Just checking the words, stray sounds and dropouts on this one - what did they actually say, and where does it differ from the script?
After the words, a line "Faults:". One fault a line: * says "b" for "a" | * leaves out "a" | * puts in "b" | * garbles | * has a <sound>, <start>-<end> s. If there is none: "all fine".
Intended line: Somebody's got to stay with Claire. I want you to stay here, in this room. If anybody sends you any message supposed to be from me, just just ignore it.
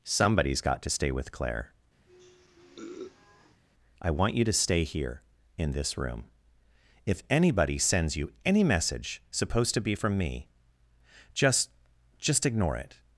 Somebody's got to stay with Claire. I want you to stay here, in this room. If anybody sends you any message supposed to be from me, just just ignore it.
Faults:
* has a sniff, 2.1-3.6 s